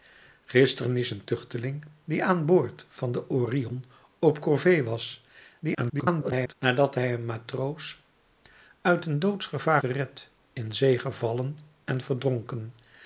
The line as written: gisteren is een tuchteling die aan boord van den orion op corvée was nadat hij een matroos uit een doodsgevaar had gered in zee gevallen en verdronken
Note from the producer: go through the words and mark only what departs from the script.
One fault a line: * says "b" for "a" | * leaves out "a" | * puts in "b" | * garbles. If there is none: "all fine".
* garbles
* leaves out "had"